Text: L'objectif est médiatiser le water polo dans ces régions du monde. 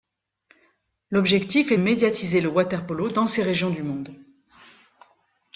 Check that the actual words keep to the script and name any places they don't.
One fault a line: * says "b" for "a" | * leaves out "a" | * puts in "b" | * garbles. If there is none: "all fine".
all fine